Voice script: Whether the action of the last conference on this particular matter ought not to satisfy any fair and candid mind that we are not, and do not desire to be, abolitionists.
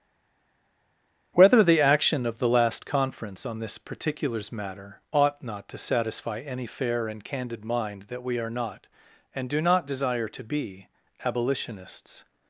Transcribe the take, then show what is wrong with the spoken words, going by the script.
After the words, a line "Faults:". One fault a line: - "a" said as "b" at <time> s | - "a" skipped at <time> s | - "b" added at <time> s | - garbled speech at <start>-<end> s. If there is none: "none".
Whether the action of the last conference on this particulars matter ought not to satisfy any fair and candid mind that we are not, and do not desire to be, abolitionists.
Faults:
- "particular" said as "particulars" at 3.8 s